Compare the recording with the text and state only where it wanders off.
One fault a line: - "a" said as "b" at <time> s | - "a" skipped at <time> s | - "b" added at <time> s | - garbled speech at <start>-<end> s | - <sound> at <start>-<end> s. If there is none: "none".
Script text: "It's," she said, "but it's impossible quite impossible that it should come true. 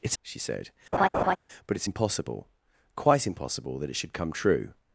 - laugh at 0.9-1.4 s